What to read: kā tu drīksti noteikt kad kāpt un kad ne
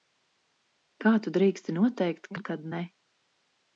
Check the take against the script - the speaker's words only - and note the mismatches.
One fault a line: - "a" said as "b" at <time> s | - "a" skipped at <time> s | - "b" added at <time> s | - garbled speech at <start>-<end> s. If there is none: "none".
- "kad kāpt" skipped at 2.3 s